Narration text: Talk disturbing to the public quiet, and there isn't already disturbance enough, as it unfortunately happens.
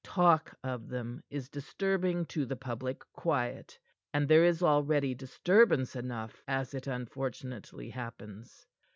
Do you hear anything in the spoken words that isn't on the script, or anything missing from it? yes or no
yes